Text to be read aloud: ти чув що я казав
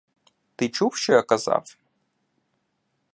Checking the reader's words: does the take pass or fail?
pass